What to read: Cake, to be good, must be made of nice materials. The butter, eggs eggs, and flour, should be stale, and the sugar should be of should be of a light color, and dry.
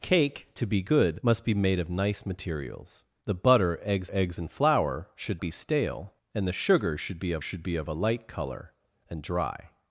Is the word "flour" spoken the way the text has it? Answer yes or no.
yes